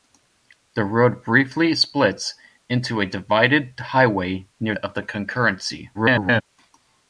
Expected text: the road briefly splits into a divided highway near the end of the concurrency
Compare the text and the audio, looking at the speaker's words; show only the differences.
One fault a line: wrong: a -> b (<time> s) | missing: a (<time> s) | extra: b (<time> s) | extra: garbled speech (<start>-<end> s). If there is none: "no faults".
missing: the end (4.8 s)
extra: garbled speech (5.9-6.4 s)